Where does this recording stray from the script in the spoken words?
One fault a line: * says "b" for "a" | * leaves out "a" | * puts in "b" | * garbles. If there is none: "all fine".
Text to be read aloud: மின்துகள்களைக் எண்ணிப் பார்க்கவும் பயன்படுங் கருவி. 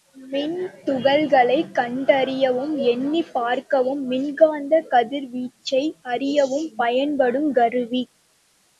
* puts in "கண்டறியவும்"
* puts in "மின்காந்தக் கதிர்வீச்சை அறியவும்"